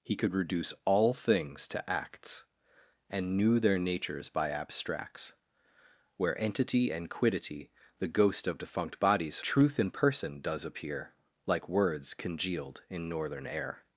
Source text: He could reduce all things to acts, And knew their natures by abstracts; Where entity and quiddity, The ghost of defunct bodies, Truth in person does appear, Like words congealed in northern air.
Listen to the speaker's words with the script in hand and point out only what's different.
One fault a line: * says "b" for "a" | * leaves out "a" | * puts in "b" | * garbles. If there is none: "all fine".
all fine